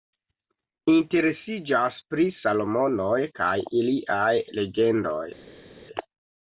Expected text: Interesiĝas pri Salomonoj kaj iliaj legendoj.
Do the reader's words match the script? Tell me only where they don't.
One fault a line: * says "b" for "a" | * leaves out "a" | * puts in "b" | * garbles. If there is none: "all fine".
all fine